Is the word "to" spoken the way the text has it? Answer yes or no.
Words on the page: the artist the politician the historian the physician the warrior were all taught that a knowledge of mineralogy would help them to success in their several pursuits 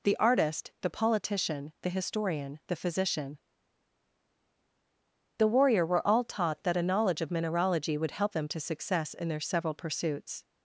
yes